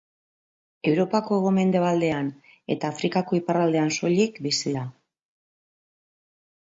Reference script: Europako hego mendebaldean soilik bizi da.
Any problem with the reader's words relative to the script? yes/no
yes